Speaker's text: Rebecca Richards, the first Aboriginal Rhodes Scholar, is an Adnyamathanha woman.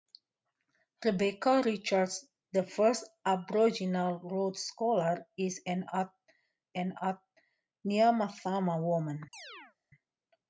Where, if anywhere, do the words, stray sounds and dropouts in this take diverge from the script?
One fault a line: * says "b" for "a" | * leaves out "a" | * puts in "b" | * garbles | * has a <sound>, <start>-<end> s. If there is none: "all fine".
* puts in "an"
* has a chirp, 9.3-9.8 s